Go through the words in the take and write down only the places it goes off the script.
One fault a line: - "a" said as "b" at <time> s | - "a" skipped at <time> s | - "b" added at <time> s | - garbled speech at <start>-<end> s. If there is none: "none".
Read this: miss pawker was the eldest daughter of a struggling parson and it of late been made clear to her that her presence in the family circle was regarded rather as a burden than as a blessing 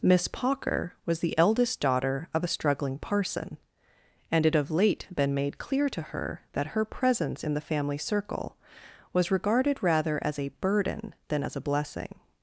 none